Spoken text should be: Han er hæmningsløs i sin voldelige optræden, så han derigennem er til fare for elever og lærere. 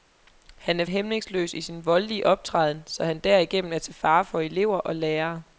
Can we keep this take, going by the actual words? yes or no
yes